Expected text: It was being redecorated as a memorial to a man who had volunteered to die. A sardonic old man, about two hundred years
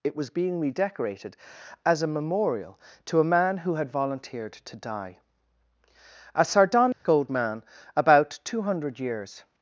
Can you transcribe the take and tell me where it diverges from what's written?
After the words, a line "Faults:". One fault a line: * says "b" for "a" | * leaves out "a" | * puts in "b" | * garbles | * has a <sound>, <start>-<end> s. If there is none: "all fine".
It was being redecorated as a memorial to a man who had volunteered to die. A sardonic old man, about two hundred years
Faults:
* has a dropout, 6.9-7.1 s